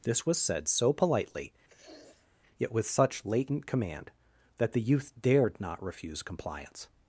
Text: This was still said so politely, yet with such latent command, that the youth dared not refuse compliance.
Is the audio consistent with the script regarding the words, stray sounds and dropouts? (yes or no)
no